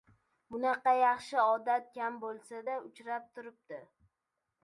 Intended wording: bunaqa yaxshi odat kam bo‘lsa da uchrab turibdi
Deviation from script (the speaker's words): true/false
false